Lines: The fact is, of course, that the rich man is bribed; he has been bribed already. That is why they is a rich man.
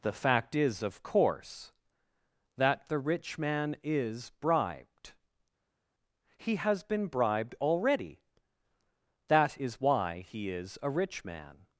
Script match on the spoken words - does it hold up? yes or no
no